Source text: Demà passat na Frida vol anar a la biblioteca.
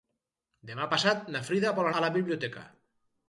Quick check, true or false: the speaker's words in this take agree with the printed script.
false